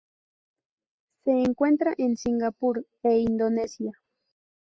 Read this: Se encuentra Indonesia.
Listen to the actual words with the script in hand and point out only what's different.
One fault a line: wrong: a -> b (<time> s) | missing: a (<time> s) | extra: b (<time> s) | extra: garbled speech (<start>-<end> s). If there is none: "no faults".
extra: en Singapur e (1.9 s)